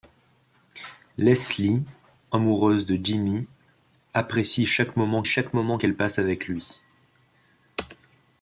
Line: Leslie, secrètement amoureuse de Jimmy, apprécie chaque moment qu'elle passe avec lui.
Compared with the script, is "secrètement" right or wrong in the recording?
wrong